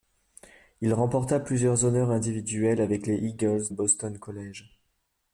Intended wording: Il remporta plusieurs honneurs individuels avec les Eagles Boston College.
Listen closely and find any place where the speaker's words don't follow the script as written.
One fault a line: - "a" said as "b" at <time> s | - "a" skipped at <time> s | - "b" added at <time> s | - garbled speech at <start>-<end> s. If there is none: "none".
none